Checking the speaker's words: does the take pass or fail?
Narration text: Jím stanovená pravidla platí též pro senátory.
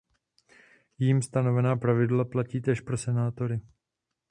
pass